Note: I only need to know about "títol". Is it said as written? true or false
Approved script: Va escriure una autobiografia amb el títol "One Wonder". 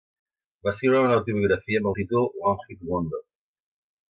true